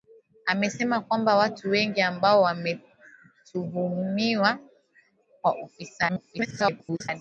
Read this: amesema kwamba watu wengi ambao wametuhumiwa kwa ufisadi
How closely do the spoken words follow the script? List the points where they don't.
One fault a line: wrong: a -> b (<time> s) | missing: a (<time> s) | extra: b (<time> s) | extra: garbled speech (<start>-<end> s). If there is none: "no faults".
extra: garbled speech (6.1-7.1 s)